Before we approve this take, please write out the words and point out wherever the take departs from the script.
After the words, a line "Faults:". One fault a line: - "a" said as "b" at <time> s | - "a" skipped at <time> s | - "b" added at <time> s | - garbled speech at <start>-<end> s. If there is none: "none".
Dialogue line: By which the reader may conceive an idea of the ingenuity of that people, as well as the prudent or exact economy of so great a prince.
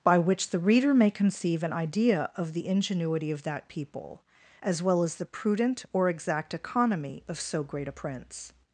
By which the reader may conceive an idea of the ingenuity of that people, as well as the prudent or exact economy of so great a prince.
Faults:
none